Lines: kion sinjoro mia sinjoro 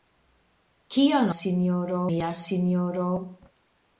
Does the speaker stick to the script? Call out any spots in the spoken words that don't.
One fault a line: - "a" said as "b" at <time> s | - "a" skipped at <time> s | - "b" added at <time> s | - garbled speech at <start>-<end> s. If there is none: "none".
none